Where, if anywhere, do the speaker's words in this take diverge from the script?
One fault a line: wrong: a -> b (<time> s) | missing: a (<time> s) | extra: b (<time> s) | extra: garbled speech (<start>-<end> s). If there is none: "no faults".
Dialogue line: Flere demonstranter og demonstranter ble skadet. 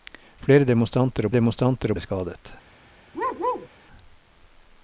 no faults